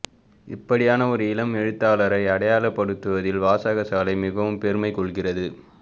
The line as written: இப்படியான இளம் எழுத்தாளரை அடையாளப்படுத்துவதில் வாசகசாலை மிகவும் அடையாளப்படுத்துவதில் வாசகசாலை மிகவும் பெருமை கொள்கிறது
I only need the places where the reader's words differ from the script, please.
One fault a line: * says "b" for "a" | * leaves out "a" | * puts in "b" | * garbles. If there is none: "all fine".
* puts in "ஒரு"
* leaves out "அடையாளப்படுத்துவதில் வாசகசாலை மிகவும்"